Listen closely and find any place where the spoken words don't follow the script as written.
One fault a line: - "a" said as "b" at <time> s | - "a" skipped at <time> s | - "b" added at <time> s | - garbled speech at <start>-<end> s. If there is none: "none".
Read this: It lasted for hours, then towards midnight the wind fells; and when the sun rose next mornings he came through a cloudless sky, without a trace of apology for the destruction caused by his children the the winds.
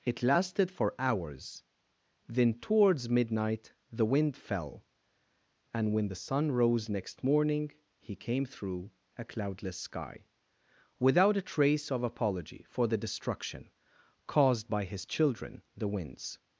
- "fells" said as "fell" at 4.3 s
- "mornings" said as "morning" at 7.2 s
- "the" skipped at 15.9 s